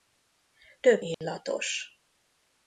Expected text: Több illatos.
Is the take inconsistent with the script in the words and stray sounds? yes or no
yes